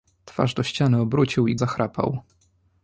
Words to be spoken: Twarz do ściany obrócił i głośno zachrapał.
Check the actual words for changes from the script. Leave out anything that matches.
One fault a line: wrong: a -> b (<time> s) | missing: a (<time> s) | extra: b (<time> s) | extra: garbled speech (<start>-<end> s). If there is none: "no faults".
missing: głośno (1.6 s)